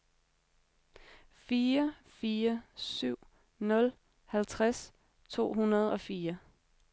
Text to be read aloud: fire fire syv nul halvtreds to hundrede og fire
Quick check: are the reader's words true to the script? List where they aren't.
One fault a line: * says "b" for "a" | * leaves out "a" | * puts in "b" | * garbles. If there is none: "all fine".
all fine